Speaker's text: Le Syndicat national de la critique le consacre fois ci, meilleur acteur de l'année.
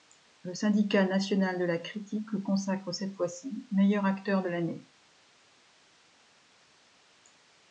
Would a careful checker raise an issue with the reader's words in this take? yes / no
yes